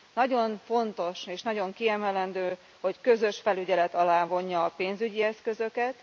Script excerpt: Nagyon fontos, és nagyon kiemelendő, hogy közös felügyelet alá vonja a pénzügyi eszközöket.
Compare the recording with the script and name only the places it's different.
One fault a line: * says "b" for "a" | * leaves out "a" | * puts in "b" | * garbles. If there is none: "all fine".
all fine